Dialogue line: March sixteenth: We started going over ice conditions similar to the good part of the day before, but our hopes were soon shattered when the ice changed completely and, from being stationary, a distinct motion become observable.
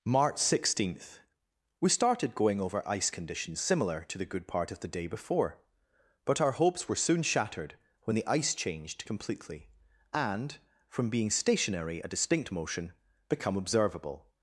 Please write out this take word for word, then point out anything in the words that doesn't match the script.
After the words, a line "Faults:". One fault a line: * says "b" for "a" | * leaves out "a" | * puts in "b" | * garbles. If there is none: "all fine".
March sixteenth: We started going over ice conditions similar to the good part of the day before, but our hopes were soon shattered when the ice changed completely and, from being stationary, a distinct motion become observable.
Faults:
all fine